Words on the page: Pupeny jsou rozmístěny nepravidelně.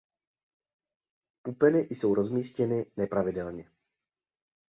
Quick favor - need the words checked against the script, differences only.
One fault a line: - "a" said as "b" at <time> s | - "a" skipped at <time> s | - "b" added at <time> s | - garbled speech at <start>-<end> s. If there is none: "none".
none